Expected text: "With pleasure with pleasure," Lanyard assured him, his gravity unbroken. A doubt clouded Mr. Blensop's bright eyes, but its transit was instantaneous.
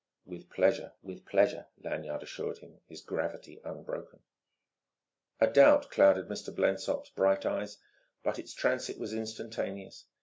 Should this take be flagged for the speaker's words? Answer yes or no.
no